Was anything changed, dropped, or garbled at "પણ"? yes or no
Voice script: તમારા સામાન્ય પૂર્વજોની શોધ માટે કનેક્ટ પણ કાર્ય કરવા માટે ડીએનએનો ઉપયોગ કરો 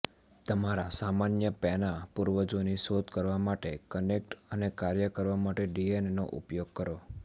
yes